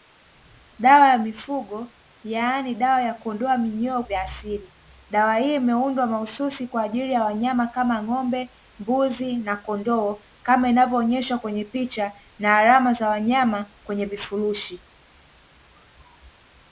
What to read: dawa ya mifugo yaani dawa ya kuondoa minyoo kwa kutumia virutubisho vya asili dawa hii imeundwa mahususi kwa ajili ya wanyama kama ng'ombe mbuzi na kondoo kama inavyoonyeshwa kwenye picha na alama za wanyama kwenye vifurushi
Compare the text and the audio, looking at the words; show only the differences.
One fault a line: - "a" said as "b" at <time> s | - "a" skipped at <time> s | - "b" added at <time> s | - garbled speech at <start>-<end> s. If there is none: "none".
- "kwa kutumia virutubisho" skipped at 4.0 s